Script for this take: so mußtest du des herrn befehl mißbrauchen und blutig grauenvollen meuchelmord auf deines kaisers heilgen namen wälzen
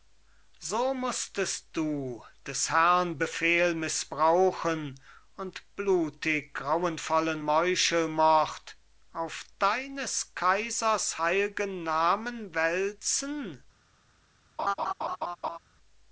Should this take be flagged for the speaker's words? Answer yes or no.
no